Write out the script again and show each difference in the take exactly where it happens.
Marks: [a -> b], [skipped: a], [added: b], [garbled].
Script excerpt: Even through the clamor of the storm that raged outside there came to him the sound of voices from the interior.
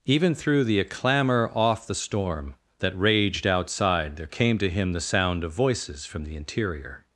Even through the clamor [of -> off] the storm that raged outside there came to him the sound of voices from the interior.